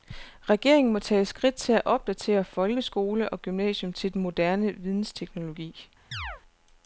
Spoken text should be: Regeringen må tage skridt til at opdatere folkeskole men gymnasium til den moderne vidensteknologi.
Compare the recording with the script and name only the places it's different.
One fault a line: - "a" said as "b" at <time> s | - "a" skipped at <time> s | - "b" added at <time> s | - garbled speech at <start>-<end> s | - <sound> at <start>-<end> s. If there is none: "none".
- "men" said as "og" at 3.3 s
- chirp at 6.1-6.4 s